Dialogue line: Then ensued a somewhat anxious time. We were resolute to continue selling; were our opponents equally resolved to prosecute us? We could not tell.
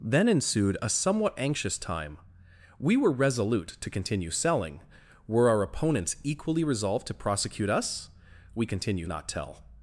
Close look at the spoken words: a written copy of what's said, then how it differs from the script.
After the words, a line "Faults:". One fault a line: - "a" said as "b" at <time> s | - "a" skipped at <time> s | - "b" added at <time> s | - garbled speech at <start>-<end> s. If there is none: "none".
Then ensued a somewhat anxious time. We were resolute to continue selling; were our opponents equally resolved to prosecute us? We continue not tell.
Faults:
- "could" said as "continue" at 8.7 s